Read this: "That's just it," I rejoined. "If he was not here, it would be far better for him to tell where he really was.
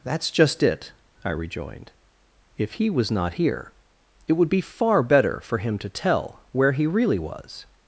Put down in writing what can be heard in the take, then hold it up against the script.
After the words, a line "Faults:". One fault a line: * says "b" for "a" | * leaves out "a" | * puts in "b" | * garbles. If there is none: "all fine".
"That's just it," I rejoined. "If he was not here, it would be far better for him to tell where he really was.
Faults:
all fine